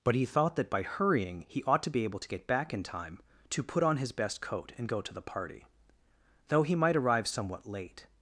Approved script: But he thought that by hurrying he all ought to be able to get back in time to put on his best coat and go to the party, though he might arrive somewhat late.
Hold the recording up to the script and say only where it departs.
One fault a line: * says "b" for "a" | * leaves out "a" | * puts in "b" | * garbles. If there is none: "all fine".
* leaves out "all"